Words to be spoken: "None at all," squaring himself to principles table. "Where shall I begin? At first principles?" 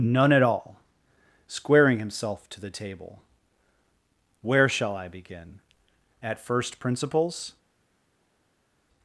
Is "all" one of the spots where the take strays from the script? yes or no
no